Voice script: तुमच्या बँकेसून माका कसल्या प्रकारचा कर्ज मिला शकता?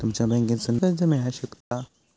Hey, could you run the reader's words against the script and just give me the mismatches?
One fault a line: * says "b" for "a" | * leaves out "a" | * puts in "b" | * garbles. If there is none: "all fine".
* leaves out "माका कसल्या प्रकारचा"